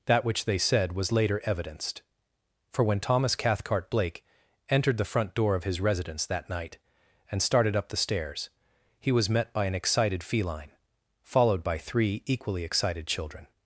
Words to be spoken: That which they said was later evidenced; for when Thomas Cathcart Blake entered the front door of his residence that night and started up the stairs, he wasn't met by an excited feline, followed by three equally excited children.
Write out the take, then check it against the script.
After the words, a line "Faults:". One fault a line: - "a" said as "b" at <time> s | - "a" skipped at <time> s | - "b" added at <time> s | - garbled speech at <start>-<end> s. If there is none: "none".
That which they said was later evidenced; for when Thomas Cathcart Blake entered the front door of his residence that night and started up the stairs, he was met by an excited feline, followed by three equally excited children.
Faults:
- "wasn't" said as "was" at 9.1 s